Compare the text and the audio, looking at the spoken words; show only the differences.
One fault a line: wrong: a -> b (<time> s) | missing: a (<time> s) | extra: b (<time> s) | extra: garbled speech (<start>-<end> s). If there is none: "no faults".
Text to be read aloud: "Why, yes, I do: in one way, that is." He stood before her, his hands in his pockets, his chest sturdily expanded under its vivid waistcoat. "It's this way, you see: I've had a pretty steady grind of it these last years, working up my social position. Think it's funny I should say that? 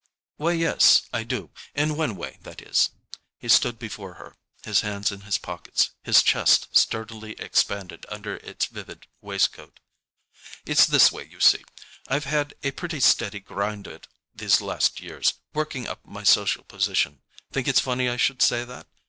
missing: of (13.9 s)